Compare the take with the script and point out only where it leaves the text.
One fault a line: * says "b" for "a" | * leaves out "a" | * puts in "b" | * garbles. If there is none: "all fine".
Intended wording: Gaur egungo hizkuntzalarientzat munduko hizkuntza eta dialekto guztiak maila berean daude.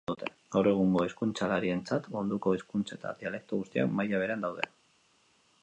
all fine